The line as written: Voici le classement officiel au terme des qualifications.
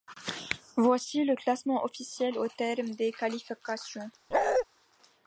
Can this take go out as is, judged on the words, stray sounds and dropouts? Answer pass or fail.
fail